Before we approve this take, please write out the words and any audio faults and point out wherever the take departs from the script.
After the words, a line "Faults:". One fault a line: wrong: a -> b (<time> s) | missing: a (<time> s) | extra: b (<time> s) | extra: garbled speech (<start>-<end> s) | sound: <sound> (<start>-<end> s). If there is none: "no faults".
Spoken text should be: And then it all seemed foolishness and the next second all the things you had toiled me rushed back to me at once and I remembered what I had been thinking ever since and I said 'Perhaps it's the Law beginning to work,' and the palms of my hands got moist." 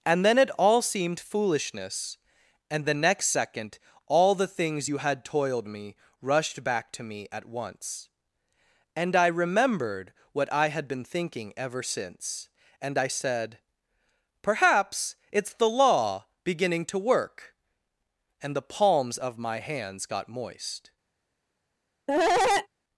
And then it all seemed foolishness and the next second all the things you had toiled me rushed back to me at once and I remembered what I had been thinking ever since and I said 'Perhaps it's the Law beginning to work,' and the palms of my hands got moist."
Faults:
sound: cough (22.1-22.7 s)